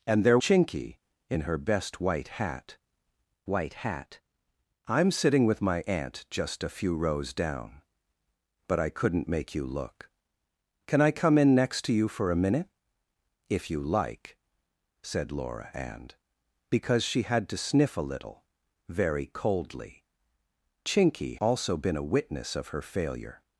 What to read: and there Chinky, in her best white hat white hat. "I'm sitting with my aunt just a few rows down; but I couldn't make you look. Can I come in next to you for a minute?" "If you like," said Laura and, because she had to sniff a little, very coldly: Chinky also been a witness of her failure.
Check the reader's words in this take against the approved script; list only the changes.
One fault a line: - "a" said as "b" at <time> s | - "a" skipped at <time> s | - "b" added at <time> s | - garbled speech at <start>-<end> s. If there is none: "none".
none